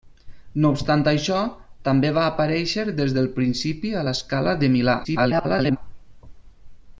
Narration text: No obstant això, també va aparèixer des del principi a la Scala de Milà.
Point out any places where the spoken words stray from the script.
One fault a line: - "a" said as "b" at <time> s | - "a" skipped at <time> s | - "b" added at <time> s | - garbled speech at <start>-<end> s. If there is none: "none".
- garbled speech at 5.0-5.8 s